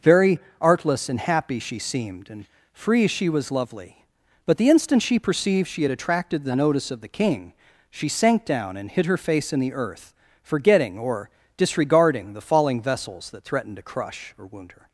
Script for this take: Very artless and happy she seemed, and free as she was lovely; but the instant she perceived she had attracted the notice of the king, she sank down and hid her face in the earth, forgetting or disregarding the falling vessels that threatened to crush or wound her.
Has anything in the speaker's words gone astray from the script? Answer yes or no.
yes